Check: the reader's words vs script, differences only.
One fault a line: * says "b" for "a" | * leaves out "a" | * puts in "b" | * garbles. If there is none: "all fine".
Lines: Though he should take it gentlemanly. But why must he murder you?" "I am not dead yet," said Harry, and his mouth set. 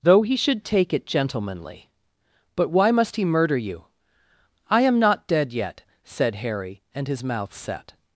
all fine